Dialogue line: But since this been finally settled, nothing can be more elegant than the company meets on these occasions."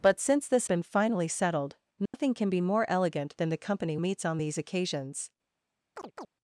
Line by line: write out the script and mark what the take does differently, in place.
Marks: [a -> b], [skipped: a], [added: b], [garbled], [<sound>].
But since this been finally settled, nothing [dropout] can be more elegant than the company meets on these occasions." [chirp]